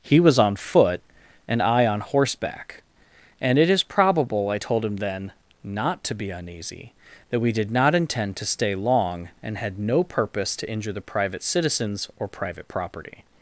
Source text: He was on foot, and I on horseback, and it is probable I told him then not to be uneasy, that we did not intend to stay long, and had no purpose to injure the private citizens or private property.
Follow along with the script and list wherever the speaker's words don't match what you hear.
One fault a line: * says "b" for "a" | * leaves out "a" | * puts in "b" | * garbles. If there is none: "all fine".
all fine